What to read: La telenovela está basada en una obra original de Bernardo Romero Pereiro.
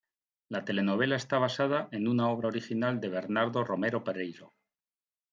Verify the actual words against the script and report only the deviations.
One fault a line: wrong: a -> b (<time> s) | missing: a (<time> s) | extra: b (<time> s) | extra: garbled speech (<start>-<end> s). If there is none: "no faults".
no faults